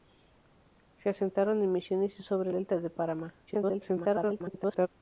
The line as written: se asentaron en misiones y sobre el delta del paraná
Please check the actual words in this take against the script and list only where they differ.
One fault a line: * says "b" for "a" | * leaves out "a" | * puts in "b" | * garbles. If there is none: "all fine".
* leaves out "el"
* garbles